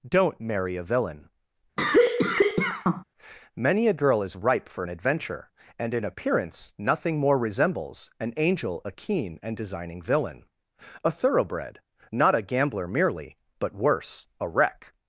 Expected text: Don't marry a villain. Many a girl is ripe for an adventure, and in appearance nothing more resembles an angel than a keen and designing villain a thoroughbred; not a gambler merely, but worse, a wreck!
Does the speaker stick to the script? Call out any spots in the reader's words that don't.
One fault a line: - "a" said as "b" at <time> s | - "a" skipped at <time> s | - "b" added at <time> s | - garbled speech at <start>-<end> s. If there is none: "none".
- "than" skipped at 8.8 s